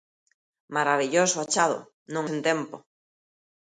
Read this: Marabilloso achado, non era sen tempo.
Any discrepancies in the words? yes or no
yes